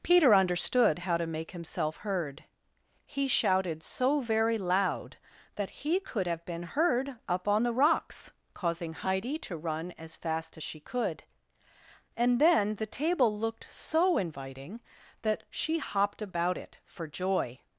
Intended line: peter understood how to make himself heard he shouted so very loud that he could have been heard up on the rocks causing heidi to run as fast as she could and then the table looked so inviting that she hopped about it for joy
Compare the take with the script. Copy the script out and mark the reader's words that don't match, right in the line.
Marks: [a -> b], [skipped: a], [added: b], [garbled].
peter understood how to make himself heard he shouted so very loud that he could have been heard up on the rocks causing heidi to run as fast as she could and then the table looked so inviting that she hopped about it for joy